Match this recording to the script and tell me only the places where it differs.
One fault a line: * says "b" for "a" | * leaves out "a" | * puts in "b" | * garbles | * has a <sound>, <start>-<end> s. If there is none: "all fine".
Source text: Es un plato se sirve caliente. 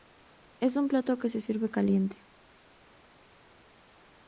* puts in "que"